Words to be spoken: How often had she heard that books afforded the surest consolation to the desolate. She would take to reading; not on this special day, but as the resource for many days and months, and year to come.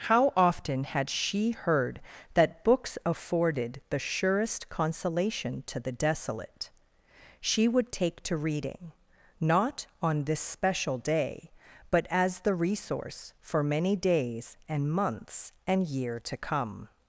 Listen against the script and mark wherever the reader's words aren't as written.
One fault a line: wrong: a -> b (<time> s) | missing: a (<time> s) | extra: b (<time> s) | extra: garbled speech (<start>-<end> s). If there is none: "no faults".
no faults